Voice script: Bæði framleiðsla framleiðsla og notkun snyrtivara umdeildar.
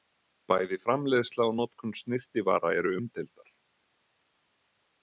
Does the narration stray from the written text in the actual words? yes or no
yes